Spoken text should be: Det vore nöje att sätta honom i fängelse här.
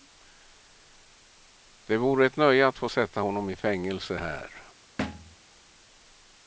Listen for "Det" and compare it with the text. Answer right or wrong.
right